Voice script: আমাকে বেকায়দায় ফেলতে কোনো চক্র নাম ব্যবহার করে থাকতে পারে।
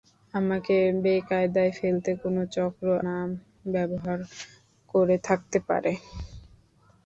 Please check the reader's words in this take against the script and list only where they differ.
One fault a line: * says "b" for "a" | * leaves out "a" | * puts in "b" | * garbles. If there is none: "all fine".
all fine